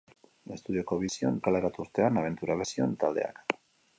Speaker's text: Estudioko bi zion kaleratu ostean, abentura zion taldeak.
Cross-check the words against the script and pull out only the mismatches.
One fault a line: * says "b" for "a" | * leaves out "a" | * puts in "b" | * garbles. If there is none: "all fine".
all fine